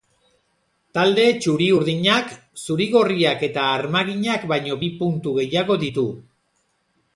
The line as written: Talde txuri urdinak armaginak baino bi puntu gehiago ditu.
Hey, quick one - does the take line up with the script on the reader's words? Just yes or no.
no